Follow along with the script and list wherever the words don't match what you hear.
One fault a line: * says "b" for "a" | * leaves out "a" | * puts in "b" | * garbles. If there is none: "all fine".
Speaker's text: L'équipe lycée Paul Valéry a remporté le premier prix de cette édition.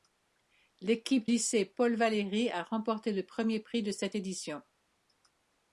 all fine